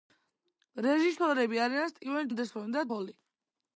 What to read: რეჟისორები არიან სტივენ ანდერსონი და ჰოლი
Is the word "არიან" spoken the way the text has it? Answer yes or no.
yes